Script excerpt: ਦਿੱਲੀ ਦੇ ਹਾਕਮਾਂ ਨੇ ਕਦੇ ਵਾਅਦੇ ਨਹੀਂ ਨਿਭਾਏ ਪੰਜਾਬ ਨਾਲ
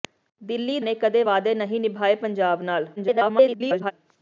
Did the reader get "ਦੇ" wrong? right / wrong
wrong